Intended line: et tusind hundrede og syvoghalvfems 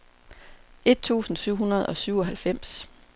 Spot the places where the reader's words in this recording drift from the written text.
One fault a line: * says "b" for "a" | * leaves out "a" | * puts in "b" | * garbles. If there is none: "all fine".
* puts in "syv"